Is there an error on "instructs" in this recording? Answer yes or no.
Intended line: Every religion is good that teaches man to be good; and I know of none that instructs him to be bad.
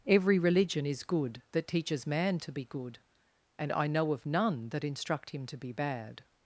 yes